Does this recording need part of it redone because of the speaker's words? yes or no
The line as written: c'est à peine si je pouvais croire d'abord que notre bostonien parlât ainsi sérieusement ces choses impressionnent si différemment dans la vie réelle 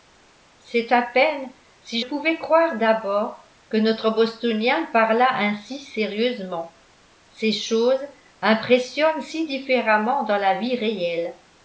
yes